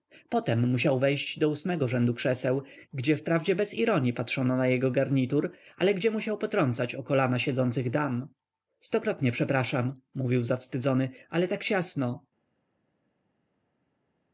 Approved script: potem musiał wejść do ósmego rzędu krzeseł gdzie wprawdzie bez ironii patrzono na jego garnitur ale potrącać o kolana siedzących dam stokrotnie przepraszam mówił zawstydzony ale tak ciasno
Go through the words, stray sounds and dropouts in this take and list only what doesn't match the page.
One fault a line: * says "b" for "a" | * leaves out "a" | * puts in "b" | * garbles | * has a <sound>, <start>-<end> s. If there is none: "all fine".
* puts in "gdzie musiał"